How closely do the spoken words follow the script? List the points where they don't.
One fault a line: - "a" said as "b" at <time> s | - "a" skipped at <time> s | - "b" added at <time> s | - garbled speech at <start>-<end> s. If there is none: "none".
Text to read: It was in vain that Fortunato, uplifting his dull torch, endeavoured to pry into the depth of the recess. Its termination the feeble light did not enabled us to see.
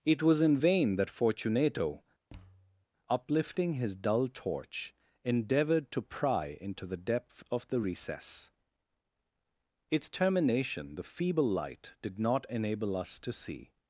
- "enabled" said as "enable" at 12.5 s